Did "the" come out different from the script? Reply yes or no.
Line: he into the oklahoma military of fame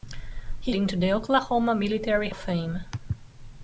no